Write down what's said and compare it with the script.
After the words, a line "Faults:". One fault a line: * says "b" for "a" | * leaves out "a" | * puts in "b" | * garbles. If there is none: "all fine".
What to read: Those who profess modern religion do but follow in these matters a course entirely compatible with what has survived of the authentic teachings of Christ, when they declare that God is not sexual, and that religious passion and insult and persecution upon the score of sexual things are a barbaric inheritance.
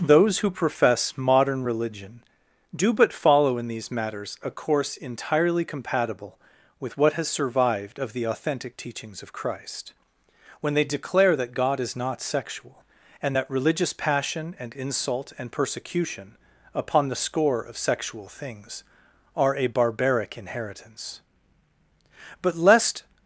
Those who profess modern religion do but follow in these matters a course entirely compatible with what has survived of the authentic teachings of Christ, when they declare that God is not sexual, and that religious passion and insult and persecution upon the score of sexual things are a barbaric inheritance. But lest
Faults:
* puts in "But lest"